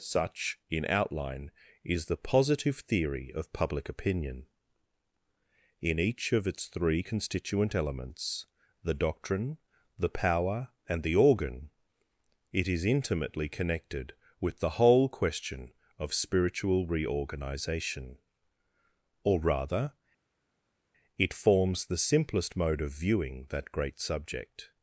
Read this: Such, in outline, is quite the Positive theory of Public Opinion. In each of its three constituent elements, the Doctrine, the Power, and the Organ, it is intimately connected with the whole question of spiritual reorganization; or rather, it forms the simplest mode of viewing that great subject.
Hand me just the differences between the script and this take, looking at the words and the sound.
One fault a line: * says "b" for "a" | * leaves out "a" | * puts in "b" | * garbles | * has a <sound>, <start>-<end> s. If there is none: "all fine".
* leaves out "quite"